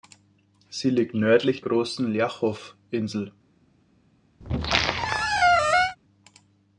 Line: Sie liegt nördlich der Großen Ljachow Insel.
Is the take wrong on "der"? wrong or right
wrong